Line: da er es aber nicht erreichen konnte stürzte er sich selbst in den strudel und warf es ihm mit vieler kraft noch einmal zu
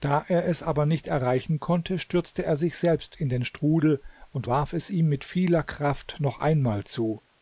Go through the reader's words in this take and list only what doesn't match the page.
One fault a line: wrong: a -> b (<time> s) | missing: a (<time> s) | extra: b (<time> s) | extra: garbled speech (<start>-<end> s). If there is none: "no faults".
no faults